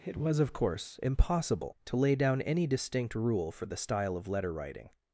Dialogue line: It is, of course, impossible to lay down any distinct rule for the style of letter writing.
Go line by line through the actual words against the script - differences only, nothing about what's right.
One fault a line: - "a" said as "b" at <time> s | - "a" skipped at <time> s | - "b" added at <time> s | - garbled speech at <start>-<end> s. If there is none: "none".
- "is" said as "was" at 0.2 s